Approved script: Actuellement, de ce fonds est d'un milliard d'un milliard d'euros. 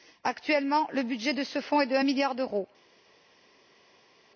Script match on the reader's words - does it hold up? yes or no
no